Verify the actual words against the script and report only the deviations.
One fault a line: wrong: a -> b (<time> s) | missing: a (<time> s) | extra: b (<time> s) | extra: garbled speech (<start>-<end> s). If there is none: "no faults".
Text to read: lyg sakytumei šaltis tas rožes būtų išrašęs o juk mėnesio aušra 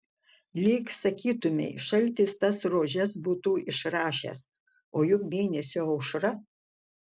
no faults